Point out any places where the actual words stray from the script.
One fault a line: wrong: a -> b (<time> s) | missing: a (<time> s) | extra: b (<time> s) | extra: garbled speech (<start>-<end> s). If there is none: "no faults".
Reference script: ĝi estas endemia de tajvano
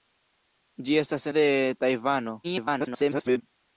missing: endemia (1.3 s)
extra: garbled speech (2.4-3.4 s)